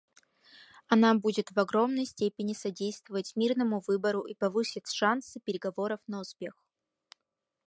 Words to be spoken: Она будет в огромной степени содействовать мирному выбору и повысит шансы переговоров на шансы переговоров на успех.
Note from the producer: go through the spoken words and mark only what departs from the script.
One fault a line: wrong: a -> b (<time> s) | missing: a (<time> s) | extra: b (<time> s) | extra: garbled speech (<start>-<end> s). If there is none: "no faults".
missing: шансы переговоров на (6.2 s)